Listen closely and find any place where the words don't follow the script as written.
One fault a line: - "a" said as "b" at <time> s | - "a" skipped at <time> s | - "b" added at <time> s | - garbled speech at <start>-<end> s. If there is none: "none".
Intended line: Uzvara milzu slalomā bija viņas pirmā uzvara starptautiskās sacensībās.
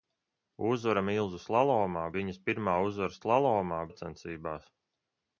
- "bija" skipped at 2.1 s
- "starptautiskās" said as "slalomā" at 3.2 s